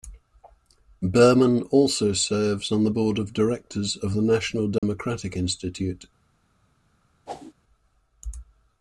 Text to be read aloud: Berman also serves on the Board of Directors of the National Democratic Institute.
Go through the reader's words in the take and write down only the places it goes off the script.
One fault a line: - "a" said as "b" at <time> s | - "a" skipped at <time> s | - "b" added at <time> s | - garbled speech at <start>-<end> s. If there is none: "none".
none